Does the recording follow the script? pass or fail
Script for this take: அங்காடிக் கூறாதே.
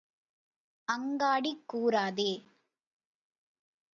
pass